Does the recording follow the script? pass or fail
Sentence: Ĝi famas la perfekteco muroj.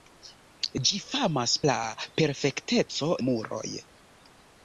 pass